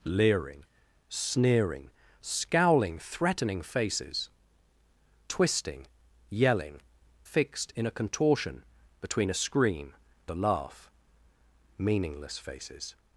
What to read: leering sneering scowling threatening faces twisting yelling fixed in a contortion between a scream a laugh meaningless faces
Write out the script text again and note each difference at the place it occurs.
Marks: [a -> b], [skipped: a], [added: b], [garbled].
leering sneering scowling threatening faces twisting yelling fixed in a contortion between a scream a laugh meaningless faces